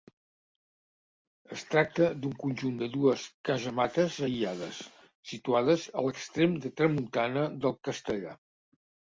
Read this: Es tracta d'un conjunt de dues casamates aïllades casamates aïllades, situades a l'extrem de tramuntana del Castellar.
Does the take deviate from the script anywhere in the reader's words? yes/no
yes